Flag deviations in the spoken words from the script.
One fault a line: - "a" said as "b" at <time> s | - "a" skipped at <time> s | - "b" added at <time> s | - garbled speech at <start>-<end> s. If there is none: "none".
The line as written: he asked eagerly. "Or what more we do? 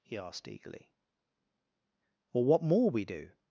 none